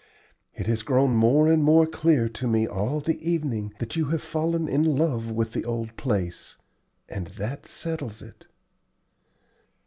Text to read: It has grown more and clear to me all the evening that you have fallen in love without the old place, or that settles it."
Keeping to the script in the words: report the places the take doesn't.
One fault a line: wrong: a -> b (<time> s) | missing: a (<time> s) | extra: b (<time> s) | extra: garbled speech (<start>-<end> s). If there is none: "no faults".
extra: more (1.6 s)
wrong: without -> with (5.3 s)
wrong: or -> and (7.1 s)